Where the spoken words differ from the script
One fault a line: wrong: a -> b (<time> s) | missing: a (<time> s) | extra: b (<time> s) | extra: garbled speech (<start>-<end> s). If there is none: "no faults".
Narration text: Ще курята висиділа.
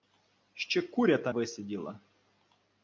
no faults